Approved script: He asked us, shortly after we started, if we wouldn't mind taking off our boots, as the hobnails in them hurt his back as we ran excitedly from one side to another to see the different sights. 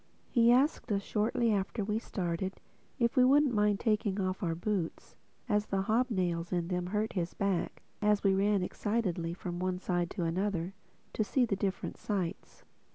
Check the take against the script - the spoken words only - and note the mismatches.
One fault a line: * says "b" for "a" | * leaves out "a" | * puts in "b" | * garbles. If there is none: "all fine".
all fine